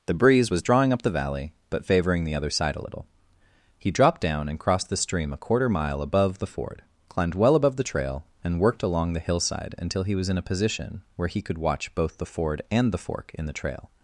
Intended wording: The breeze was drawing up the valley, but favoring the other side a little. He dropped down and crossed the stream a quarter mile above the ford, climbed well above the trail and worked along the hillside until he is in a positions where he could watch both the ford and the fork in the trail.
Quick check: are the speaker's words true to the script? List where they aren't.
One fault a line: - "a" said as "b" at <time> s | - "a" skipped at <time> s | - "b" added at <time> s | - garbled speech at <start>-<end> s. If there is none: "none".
- "is" said as "was" at 10.1 s
- "positions" said as "position" at 10.4 s